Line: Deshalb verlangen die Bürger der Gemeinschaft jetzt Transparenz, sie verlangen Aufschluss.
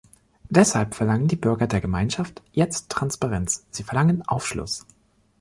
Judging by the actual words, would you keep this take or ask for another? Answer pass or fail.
pass